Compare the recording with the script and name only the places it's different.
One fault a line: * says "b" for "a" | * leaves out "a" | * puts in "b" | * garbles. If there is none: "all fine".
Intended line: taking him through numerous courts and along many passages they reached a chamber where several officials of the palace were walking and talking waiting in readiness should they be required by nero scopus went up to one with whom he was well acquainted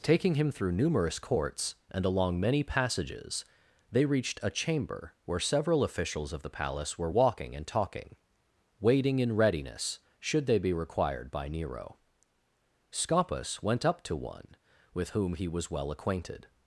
all fine